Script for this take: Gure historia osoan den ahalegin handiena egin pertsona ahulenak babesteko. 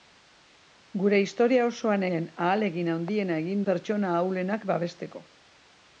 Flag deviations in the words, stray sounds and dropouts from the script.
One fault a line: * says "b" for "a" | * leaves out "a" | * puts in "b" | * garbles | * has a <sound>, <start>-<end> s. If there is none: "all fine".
all fine